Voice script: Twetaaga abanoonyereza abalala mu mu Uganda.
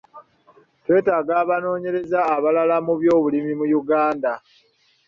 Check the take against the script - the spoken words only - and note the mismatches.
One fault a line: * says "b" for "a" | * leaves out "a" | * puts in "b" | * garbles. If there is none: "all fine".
* puts in "by'obulimi"